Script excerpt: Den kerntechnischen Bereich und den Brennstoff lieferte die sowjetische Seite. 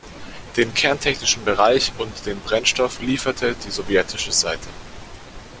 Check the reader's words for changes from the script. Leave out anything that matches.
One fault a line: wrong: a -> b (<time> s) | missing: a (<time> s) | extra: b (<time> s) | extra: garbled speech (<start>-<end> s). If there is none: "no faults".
no faults